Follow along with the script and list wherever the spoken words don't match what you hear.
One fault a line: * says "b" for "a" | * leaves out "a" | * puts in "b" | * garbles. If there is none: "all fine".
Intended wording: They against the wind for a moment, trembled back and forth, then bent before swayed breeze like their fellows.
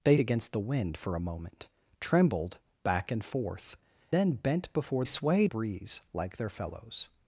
all fine